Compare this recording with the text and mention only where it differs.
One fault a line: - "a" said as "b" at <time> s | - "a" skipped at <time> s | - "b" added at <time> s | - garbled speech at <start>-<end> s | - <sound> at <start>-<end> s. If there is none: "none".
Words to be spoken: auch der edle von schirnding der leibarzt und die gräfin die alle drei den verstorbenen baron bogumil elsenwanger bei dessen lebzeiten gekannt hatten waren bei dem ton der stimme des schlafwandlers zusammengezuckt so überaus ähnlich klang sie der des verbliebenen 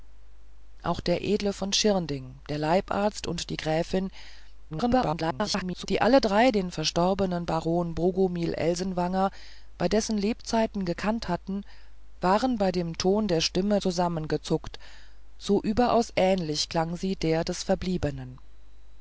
- garbled speech at 4.7-5.9 s
- "des schlafwandlers" skipped at 13.8 s